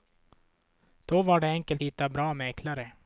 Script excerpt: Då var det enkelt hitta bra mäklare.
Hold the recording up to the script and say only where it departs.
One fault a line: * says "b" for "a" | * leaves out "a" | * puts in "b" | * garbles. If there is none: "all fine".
all fine